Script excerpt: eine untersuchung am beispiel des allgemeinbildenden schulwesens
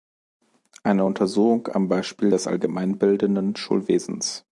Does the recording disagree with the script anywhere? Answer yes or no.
no